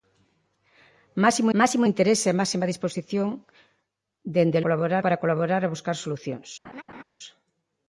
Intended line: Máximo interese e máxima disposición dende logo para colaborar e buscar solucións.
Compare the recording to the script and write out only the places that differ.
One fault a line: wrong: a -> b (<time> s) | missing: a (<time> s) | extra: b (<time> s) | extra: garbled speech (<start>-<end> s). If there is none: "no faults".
extra: máximo (1.6 s)
wrong: logo -> colaborar (4.6 s)